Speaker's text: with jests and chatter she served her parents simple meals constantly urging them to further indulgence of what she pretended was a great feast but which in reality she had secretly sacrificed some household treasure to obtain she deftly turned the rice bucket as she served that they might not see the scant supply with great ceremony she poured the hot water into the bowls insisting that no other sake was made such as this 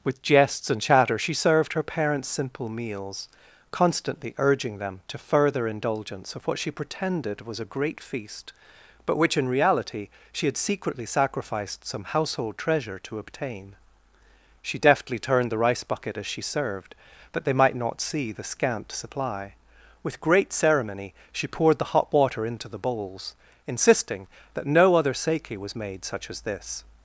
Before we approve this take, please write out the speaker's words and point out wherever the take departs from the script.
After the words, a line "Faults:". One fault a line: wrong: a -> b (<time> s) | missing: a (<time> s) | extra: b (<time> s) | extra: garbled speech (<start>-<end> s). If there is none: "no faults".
with jests and chatter she served her parents simple meals constantly urging them to further indulgence of what she pretended was a great feast but which in reality she had secretly sacrificed some household treasure to obtain she deftly turned the rice bucket as she served that they might not see the scant supply with great ceremony she poured the hot water into the bowls insisting that no other sake was made such as this
Faults:
no faults